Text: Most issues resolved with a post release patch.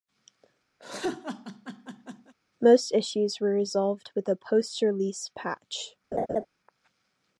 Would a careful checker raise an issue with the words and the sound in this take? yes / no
yes